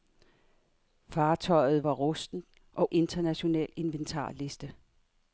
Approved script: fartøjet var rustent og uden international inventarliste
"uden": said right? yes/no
no